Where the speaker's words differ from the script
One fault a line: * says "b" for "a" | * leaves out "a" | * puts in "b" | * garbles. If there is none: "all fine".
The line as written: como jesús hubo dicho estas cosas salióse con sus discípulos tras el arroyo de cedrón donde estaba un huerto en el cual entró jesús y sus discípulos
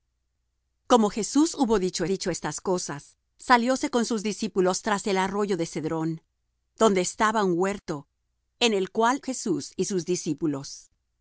* puts in "dicho"
* leaves out "entró"